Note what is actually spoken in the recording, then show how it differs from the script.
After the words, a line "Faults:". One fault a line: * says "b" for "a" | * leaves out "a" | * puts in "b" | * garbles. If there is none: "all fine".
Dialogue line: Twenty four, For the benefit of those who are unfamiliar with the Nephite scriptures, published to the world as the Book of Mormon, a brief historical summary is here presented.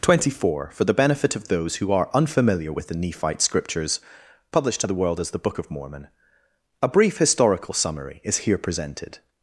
Twenty four, For the benefit of those who are unfamiliar with the Nephite scriptures, published to the world as the Book of Mormon, a brief historical summary is here presented.
Faults:
all fine